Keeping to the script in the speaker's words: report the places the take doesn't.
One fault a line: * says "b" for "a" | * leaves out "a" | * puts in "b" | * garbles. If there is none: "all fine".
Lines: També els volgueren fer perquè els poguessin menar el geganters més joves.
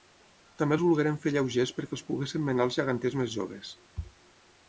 * puts in "lleugers"
* says "els" for "el"